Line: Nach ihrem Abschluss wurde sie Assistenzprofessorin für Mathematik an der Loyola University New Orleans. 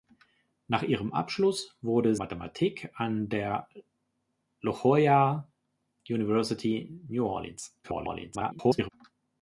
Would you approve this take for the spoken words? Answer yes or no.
no